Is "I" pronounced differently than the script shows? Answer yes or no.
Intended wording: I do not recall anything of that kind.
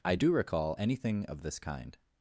no